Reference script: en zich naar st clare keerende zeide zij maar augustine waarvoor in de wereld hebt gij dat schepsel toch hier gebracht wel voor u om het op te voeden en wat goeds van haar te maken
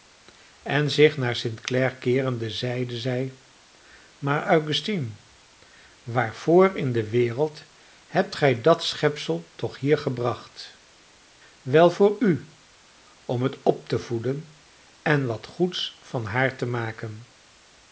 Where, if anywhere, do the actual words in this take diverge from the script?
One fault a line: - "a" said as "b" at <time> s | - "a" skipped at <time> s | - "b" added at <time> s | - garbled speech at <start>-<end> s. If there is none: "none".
none